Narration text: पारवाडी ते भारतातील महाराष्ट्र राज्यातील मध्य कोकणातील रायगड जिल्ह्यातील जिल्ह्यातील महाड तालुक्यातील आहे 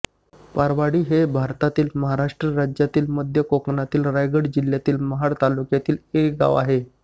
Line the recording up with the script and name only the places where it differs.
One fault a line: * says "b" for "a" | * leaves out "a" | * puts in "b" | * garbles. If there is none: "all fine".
* says "हे" for "ते"
* leaves out "जिल्ह्यातील"
* puts in "एक गाव"